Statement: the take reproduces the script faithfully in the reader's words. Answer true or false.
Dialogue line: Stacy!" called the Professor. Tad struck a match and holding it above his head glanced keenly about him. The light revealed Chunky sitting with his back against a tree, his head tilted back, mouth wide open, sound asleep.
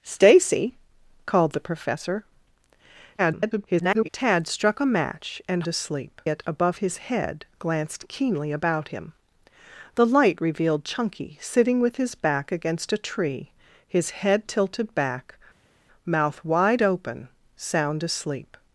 false